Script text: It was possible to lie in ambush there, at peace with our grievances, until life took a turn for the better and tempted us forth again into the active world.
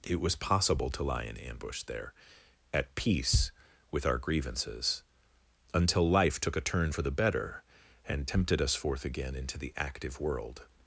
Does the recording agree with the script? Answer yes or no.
yes